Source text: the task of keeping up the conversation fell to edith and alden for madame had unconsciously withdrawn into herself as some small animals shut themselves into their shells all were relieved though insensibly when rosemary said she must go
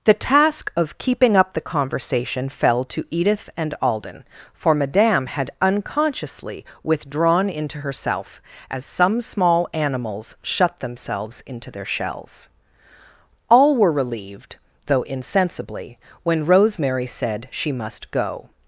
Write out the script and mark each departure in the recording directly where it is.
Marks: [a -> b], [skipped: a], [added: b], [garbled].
the task of keeping up the conversation fell to edith and alden for madame had unconsciously withdrawn into herself as some small animals shut themselves into their shells all were relieved though insensibly when rosemary said she must go